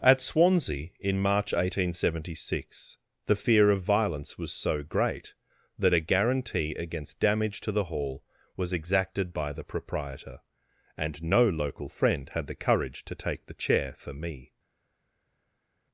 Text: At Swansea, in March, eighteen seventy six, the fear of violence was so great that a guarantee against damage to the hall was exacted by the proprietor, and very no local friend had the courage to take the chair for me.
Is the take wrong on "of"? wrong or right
right